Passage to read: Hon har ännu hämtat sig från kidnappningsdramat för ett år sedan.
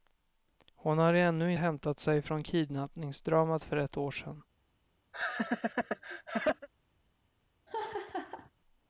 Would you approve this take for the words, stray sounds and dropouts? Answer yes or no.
no